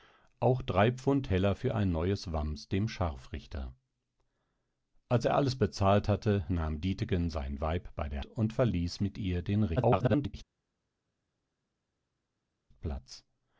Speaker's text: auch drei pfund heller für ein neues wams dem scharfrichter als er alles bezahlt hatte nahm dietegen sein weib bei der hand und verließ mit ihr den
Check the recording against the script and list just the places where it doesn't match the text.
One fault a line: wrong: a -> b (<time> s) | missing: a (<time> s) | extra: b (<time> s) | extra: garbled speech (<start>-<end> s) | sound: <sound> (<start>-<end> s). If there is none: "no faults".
missing: hand (8.2 s)
extra: garbled speech (9.8-10.3 s)